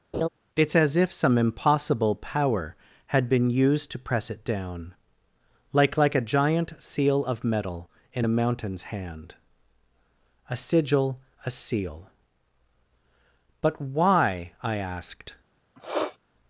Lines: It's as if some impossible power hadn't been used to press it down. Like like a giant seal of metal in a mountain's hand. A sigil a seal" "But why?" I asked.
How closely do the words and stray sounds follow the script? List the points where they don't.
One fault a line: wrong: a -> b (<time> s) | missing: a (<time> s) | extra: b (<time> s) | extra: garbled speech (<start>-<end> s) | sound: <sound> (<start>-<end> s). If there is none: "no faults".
sound: laugh (0.1-0.3 s)
wrong: hadn't -> had (3.1 s)
sound: sniff (15.8-16.2 s)